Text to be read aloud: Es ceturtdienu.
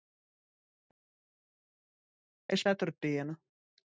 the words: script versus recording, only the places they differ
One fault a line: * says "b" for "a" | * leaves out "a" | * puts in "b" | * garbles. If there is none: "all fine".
all fine